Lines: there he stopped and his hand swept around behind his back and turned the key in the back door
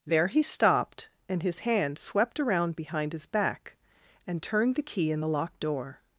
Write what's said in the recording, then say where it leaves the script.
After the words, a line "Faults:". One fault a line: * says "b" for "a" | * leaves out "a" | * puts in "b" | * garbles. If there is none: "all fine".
there he stopped and his hand swept around behind his back and turned the key in the locked door
Faults:
* says "locked" for "back"